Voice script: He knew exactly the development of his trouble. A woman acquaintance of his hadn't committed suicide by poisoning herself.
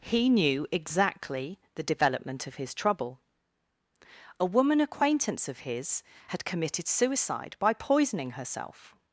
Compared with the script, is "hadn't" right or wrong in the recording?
wrong